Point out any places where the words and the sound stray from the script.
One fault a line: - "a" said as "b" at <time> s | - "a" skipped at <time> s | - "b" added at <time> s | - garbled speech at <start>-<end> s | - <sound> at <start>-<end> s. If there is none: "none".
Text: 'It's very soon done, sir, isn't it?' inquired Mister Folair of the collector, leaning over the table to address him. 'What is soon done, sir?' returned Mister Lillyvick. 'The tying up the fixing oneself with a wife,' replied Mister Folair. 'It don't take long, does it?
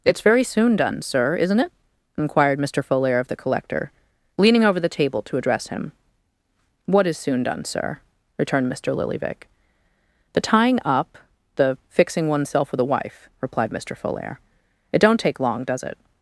none